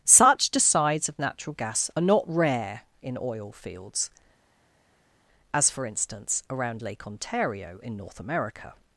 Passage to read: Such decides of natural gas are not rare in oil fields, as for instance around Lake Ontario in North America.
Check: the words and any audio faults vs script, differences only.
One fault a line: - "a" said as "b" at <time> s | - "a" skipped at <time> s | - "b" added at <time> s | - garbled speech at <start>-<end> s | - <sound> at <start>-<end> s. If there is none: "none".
none